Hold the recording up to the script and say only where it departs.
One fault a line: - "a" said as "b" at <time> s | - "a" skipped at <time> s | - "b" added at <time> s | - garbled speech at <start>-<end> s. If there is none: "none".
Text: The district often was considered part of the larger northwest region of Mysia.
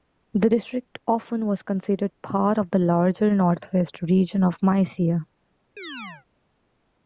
none